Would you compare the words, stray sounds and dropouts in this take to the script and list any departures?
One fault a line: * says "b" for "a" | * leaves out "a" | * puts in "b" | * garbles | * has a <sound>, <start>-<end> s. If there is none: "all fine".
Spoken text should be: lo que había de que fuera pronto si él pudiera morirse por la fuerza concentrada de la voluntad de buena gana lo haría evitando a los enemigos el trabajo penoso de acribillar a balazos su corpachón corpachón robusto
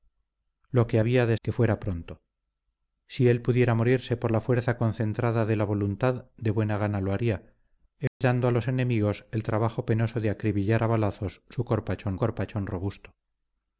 * has a dropout, 8.1-8.2 s